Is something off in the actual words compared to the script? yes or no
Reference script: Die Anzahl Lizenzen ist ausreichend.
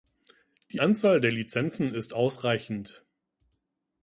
yes